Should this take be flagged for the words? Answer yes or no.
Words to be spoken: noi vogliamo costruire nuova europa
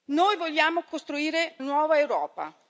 no